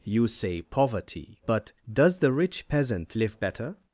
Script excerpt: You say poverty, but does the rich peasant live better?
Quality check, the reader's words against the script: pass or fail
pass